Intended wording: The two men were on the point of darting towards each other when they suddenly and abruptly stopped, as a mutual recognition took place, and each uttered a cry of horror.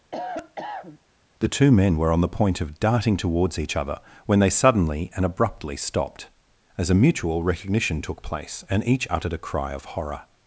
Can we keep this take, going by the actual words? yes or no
yes